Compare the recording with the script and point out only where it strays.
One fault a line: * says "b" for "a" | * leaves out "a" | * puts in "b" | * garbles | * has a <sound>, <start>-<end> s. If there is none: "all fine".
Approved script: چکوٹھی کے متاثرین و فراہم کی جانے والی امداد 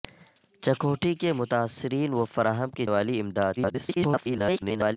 * leaves out "جانے"
* garbles